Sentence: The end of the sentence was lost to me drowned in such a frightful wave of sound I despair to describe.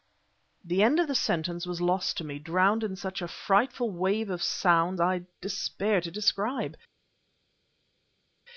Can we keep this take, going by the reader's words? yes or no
yes